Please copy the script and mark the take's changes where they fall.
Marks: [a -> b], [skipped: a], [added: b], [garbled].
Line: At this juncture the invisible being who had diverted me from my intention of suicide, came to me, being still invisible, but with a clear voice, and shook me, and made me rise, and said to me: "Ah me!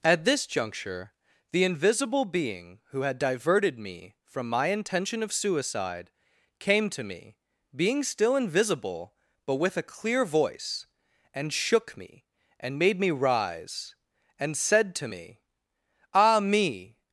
At this juncture the invisible being who had diverted me from my intention of suicide, came to me, being still invisible, but with a clear voice, and shook me, and made me rise, and said to me: "Ah me!